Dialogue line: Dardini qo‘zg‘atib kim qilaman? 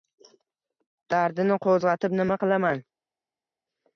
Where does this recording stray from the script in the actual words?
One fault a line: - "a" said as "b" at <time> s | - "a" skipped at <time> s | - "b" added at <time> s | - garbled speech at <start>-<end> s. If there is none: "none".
- "kim" said as "nima" at 2.2 s